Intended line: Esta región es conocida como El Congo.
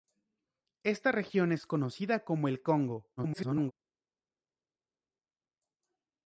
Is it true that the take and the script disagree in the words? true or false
true